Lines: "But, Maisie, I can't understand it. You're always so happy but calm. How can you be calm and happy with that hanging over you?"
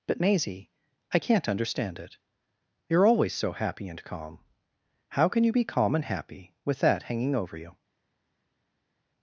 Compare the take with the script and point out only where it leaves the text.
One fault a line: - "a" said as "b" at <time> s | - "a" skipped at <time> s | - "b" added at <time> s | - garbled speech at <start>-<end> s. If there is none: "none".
- "but" said as "and" at 3.9 s